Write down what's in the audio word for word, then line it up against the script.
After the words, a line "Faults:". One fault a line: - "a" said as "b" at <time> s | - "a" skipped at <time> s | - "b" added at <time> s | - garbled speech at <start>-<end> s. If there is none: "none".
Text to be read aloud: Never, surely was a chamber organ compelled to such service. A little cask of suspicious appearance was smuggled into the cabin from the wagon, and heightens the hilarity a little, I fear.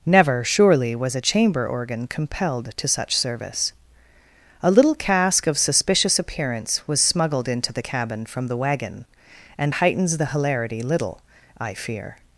Never, surely was a chamber organ compelled to such service. A little cask of suspicious appearance was smuggled into the cabin from the wagon, and heightens the hilarity little, I fear.
Faults:
- "a" skipped at 10.8 s